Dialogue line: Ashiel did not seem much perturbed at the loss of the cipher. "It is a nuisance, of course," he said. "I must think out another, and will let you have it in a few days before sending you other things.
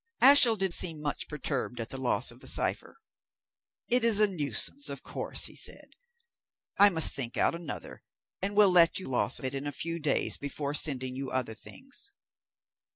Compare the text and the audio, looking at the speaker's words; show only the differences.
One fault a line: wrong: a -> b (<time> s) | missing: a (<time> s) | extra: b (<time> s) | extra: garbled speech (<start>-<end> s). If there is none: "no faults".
missing: not (0.7 s)
wrong: have -> loss (9.1 s)